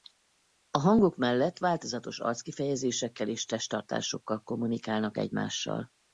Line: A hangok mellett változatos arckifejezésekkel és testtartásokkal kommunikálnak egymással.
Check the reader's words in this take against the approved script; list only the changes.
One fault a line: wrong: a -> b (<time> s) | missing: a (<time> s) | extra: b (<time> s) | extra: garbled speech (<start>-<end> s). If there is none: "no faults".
no faults